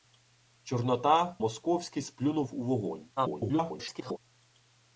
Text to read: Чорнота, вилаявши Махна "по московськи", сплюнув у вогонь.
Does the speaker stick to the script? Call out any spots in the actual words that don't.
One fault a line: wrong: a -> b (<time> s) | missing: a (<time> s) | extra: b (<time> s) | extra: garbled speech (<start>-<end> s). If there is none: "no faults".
missing: вилаявши Махна по (1.4 s)
extra: garbled speech (3.2-4.2 s)